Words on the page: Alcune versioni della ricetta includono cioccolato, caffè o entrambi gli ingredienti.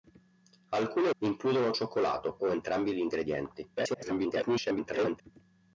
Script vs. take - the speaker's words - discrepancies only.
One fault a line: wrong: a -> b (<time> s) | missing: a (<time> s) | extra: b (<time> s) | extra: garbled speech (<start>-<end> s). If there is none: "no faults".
missing: versioni della ricetta (1.1 s)
missing: caffè (2.4 s)
extra: garbled speech (3.8-5.2 s)